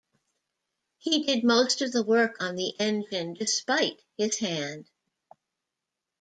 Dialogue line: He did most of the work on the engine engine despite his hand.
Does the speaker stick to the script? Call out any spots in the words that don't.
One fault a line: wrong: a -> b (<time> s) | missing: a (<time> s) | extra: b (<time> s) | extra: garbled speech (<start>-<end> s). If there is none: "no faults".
missing: engine (3.3 s)